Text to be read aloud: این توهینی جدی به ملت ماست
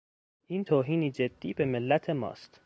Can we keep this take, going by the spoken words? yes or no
yes